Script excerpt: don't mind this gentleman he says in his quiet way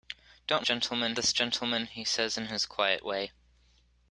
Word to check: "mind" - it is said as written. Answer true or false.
false